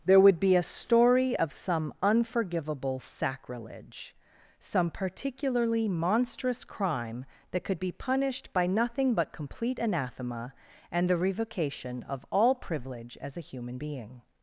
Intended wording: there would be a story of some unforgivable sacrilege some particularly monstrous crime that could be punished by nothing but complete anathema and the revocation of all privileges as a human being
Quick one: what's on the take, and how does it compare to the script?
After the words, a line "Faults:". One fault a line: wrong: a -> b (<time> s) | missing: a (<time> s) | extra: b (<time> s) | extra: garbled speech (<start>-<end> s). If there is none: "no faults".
there would be a story of some unforgivable sacrilege some particularly monstrous crime that could be punished by nothing but complete anathema and the revocation of all privilege as a human being
Faults:
wrong: privileges -> privilege (12.6 s)